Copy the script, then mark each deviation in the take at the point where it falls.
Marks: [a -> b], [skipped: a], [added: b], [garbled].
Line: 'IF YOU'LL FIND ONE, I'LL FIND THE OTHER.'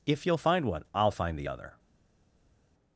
'IF YOU'LL FIND ONE, I'LL FIND THE OTHER.'